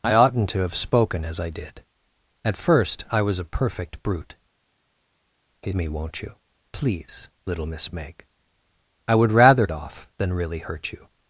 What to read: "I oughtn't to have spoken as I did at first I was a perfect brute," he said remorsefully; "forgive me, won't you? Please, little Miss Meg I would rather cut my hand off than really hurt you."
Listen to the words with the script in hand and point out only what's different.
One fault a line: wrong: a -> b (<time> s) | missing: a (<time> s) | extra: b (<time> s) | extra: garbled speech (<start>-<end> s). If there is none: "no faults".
missing: said remorsefully forgive (5.7 s)
missing: cut my hand (9.7 s)